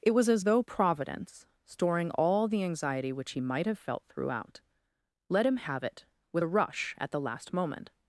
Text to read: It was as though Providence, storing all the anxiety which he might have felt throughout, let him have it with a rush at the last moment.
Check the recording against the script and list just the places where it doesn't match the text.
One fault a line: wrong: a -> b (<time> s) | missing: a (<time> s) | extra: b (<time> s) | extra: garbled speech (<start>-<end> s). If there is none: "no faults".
no faults